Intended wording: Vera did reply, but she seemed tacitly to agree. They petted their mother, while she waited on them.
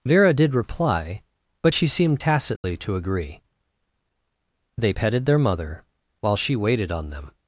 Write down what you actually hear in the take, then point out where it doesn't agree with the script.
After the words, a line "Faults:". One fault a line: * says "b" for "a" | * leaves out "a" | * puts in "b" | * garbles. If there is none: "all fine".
Vera did reply, but she seemed tacitly to agree. They petted their mother, while she waited on them.
Faults:
all fine